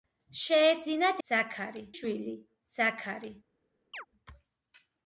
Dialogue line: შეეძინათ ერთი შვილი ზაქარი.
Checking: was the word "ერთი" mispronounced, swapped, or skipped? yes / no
yes